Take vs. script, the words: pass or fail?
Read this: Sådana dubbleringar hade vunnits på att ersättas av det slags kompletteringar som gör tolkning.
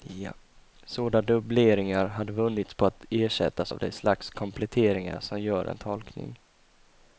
fail